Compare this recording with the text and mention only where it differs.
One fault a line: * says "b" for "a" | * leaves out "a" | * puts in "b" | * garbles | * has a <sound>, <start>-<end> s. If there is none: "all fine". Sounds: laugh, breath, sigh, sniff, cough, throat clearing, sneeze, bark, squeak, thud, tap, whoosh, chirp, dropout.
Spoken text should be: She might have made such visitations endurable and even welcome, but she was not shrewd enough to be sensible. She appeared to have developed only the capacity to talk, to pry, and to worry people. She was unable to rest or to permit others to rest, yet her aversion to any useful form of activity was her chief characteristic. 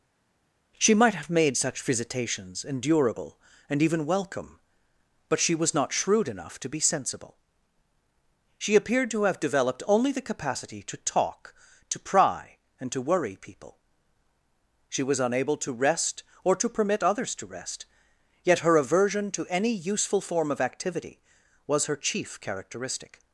all fine